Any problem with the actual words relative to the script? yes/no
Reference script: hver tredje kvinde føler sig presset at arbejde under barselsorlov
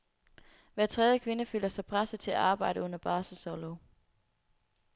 yes